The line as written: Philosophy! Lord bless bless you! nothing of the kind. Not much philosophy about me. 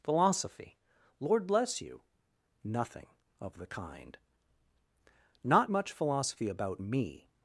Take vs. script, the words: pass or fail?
fail